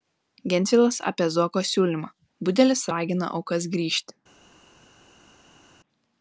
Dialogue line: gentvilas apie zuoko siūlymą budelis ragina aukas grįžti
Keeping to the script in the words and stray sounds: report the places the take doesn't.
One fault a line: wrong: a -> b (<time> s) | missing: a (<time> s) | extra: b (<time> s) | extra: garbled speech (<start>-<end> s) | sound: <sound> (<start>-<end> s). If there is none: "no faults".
no faults